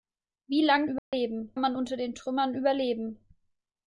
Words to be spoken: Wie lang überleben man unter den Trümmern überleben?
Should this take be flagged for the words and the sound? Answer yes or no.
yes